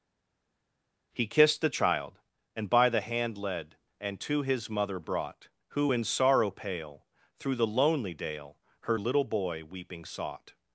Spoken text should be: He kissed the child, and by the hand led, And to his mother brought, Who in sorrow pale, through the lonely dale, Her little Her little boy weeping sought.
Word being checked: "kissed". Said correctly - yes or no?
yes